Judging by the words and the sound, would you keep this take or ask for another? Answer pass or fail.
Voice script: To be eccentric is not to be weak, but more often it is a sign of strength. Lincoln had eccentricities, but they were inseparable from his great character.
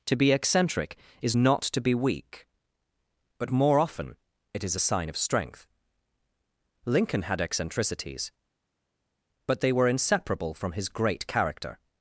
pass